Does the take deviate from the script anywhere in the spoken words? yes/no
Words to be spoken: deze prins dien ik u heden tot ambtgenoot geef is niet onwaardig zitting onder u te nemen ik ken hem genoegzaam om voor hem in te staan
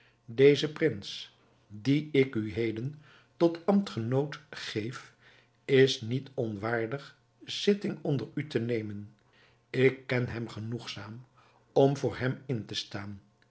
no